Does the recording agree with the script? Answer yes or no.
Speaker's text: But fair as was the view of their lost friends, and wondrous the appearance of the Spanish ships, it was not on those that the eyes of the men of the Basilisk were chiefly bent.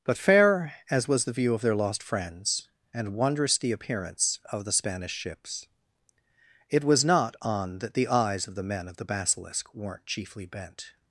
no